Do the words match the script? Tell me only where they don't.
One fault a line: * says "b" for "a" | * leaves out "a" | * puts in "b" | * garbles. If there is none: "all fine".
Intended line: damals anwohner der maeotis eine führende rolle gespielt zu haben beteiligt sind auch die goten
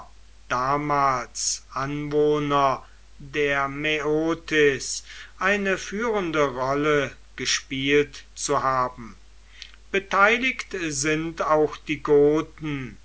all fine